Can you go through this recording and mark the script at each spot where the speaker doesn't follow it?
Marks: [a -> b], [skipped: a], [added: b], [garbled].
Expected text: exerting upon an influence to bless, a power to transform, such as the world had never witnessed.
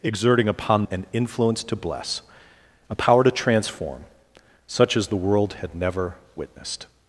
exerting upon an influence to bless, a power to transform, such as the world had never witnessed.